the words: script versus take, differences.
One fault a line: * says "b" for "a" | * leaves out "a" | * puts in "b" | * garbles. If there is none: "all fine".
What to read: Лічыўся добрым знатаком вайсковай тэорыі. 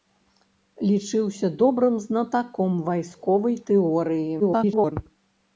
* garbles